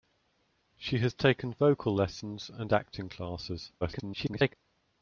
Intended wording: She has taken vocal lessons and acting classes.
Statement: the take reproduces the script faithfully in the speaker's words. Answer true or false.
false